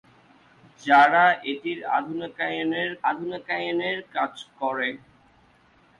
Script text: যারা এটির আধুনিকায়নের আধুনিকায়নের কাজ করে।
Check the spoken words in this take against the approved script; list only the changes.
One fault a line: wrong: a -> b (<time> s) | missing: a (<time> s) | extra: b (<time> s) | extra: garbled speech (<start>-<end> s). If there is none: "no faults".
no faults